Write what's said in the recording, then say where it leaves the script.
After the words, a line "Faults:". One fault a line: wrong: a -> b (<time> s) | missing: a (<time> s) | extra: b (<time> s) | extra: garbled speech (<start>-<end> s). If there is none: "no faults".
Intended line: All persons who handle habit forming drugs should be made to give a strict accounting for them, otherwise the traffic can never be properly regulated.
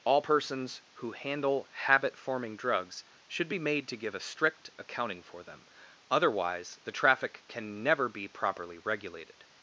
All persons who handle habit forming drugs should be made to give a strict accounting for them, otherwise the traffic can never be properly regulated.
Faults:
no faults